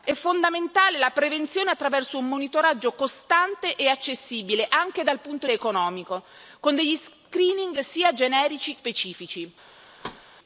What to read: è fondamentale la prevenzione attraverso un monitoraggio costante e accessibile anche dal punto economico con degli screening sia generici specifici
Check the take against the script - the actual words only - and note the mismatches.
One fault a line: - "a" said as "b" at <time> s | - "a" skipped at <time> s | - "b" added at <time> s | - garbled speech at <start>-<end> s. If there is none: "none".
none